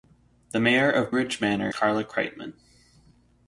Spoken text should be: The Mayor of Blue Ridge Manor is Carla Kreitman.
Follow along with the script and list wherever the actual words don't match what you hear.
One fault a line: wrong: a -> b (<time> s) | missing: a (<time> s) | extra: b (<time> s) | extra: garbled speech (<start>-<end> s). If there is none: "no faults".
missing: Blue (1.1 s)
missing: is (1.7 s)